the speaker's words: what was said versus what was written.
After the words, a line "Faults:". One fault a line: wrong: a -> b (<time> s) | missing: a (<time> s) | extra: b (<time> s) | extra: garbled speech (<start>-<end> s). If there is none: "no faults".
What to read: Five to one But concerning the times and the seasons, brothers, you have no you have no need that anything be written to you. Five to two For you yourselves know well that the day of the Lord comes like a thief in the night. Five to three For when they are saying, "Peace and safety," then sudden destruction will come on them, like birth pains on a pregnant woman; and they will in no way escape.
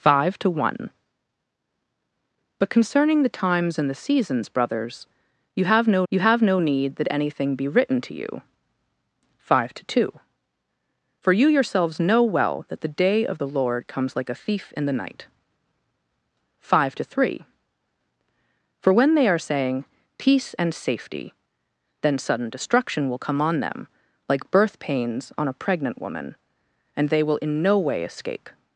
Five to one But concerning the times and the seasons, brothers, you have no you have no need that anything be written to you. Five to two For you yourselves know well that the day of the Lord comes like a thief in the night. Five to three For when they are saying, "Peace and safety," then sudden destruction will come on them, like birth pains on a pregnant woman; and they will in no way escape.
Faults:
no faults